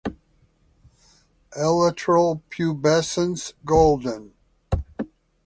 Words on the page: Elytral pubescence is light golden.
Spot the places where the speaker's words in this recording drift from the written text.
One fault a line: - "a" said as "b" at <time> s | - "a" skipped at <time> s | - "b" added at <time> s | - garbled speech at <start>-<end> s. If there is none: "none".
- "is light" skipped at 3.5 s